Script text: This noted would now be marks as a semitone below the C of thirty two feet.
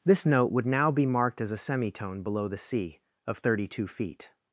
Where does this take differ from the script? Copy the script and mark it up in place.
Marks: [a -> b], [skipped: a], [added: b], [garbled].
This [noted -> note] would now be [marks -> marked] as a semitone below the C of thirty two feet.